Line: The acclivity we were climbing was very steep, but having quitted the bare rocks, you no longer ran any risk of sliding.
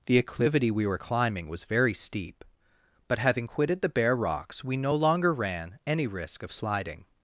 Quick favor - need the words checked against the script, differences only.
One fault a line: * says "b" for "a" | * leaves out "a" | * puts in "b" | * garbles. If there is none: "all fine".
* says "we" for "you"